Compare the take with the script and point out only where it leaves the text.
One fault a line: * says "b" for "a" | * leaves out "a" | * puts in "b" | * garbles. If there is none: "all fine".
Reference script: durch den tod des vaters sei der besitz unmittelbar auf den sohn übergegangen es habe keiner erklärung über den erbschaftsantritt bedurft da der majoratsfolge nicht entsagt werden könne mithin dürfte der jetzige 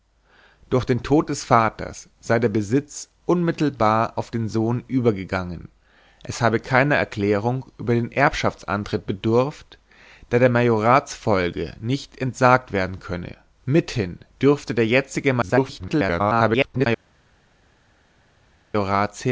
* garbles